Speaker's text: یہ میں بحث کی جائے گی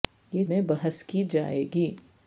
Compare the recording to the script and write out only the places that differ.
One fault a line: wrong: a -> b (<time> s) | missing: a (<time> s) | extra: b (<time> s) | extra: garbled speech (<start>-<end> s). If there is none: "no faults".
no faults